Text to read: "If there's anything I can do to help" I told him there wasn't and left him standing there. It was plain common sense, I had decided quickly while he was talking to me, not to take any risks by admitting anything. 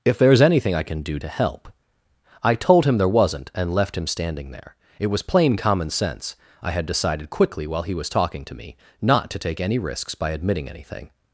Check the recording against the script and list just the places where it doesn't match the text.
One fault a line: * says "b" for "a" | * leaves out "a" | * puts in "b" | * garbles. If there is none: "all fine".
all fine